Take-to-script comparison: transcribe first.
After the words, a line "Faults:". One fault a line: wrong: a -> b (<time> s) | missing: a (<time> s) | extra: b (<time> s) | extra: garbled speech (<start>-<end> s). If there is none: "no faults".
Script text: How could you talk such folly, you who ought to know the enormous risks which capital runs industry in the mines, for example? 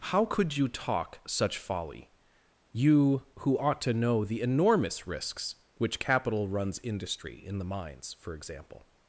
How could you talk such folly, you who ought to know the enormous risks which capital runs industry in the mines, for example?
Faults:
no faults